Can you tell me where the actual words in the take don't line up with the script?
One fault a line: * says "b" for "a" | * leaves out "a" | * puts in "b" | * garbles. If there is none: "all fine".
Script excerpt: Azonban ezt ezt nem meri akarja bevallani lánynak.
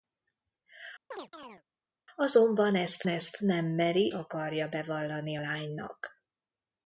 all fine